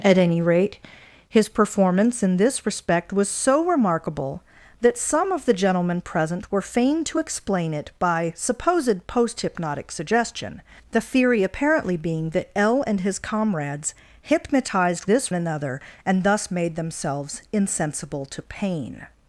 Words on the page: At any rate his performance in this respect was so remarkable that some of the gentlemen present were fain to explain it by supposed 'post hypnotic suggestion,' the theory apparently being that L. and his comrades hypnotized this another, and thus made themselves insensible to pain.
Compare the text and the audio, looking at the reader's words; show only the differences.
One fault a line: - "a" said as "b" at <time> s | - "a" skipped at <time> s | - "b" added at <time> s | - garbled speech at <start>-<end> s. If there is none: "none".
none